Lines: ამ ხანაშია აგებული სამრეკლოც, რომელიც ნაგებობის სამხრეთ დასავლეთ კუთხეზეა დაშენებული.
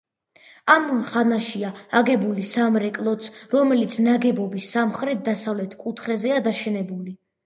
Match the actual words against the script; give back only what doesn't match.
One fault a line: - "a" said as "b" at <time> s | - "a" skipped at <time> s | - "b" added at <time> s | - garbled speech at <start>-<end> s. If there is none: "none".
none